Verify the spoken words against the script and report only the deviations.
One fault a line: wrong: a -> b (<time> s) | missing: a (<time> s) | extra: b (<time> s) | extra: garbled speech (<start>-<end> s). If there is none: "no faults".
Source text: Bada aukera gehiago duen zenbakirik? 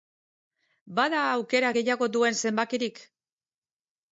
no faults